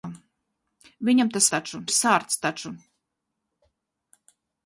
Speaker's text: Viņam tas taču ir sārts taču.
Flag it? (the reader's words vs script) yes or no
no